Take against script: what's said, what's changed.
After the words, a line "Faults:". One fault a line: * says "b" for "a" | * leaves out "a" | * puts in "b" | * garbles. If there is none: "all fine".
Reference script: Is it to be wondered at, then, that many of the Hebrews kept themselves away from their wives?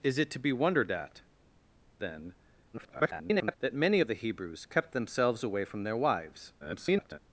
Is it to be wondered at, then, [garbled] that many of the Hebrews kept themselves away from their wives? [garbled]
Faults:
* garbles
* garbles